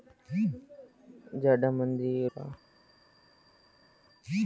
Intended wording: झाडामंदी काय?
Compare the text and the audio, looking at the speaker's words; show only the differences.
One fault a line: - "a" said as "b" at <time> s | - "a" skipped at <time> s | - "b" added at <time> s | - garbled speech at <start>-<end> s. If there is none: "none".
none